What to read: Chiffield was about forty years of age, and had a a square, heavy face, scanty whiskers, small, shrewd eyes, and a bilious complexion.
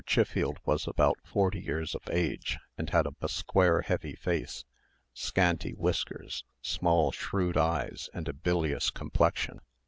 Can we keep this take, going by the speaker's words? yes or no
yes